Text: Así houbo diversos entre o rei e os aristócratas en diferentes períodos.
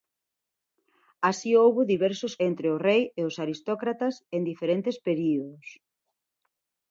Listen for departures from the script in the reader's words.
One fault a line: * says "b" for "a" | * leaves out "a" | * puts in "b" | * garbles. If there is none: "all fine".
all fine